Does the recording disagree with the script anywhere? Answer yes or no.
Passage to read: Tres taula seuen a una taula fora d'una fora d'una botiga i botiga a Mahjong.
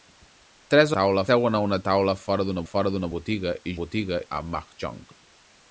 no